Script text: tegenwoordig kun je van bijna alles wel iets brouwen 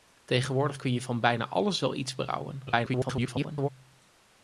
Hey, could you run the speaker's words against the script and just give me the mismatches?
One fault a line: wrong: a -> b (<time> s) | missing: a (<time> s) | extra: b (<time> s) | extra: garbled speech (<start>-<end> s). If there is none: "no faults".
extra: garbled speech (2.7-3.7 s)